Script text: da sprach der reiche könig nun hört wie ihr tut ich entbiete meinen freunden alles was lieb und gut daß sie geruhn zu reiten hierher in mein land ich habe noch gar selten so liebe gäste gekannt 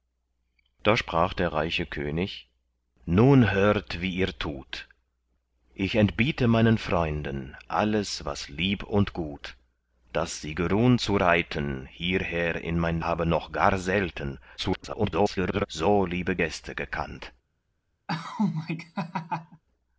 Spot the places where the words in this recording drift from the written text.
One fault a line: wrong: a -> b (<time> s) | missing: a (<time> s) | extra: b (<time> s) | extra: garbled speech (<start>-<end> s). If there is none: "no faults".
missing: land ich (13.0 s)
extra: garbled speech (14.6-15.7 s)